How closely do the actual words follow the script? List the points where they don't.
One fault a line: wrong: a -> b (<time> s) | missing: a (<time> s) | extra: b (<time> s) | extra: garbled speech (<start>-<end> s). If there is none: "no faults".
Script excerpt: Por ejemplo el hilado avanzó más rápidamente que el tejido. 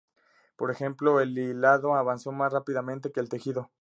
no faults